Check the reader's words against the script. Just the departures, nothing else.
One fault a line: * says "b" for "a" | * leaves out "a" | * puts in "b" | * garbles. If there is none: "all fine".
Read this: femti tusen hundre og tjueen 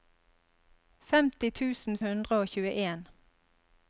all fine